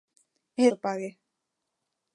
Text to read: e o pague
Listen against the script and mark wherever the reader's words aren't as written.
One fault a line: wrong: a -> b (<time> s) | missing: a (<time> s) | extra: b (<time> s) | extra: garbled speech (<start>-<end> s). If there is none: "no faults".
no faults